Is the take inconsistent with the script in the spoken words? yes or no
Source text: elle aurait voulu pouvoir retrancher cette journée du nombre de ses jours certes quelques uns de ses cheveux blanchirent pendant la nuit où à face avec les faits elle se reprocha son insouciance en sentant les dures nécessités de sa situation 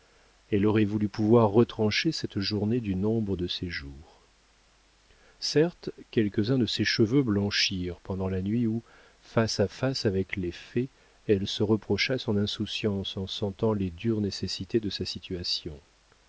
yes